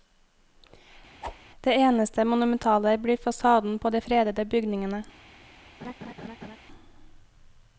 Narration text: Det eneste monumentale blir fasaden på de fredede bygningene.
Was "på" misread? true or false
false